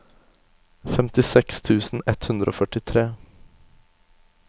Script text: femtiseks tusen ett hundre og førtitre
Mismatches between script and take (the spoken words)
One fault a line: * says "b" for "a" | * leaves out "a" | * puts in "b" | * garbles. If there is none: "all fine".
all fine